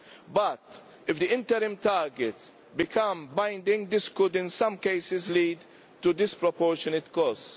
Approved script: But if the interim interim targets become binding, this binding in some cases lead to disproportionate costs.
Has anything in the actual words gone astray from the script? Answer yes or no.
yes